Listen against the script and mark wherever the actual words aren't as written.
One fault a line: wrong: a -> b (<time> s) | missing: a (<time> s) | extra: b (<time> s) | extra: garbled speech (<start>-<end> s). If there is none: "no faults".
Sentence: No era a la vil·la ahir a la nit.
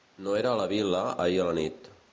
no faults